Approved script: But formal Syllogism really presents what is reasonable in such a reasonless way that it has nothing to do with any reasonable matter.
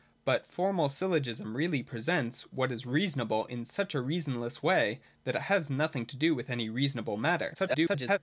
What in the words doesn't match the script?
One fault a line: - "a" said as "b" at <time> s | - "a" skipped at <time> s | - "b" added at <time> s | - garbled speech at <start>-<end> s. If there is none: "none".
- garbled speech at 7.5-8.2 s